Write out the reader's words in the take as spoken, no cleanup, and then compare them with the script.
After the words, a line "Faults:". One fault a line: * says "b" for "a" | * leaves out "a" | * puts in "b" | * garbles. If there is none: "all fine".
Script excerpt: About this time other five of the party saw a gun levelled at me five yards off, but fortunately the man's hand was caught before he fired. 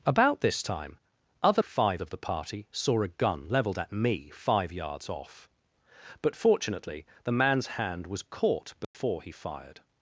About this time other five of the party saw a gun levelled at me five yards off, but fortunately the man's hand was caught before he fired.
Faults:
all fine